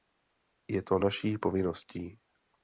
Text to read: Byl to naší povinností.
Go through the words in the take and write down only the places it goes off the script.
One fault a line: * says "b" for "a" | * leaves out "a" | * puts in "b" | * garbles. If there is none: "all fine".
* says "Je" for "Byl"